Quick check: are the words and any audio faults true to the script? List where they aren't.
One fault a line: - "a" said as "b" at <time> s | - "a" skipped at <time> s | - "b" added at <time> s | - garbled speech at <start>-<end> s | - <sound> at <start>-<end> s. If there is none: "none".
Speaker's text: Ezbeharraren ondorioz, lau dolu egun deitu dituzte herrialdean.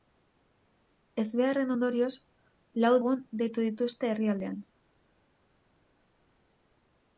- "dolu" skipped at 2.9 s